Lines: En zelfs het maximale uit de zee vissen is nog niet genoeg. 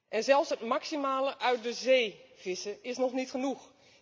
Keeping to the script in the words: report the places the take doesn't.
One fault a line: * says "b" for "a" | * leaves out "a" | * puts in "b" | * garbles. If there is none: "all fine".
all fine